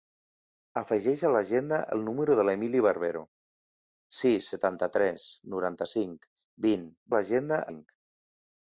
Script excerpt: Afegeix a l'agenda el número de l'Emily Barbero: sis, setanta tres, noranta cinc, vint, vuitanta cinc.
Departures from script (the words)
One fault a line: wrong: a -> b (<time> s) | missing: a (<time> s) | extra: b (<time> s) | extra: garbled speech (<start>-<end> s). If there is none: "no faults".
wrong: vuitanta -> l'agenda (7.1 s)